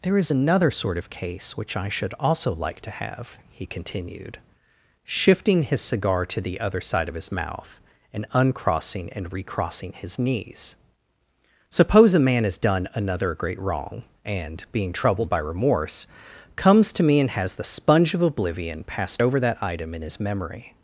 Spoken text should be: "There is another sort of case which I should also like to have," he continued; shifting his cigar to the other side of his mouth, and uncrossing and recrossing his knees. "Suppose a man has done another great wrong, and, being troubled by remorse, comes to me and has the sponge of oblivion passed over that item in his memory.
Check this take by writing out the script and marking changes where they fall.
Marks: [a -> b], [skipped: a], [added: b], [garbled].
"There is another sort of case which I should also like to have," he continued; shifting his cigar to the other side of his mouth, and uncrossing and recrossing his knees. "Suppose a man has done another great wrong, and, being troubled by remorse, comes to me and has the sponge of oblivion passed over that item in his memory.